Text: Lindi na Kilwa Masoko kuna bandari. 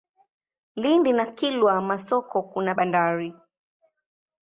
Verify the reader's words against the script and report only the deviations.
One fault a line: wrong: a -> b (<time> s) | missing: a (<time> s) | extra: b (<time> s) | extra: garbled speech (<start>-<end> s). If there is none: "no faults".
no faults